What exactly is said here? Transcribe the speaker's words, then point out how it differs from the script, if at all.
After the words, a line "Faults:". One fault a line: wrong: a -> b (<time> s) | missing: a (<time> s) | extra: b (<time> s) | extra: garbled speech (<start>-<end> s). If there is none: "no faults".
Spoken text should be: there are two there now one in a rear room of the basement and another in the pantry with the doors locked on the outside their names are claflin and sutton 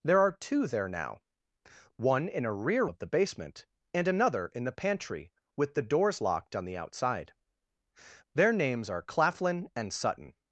there are two there now one in a rear of the basement and another in the pantry with the doors locked on the outside their names are claflin and sutton
Faults:
missing: room (2.9 s)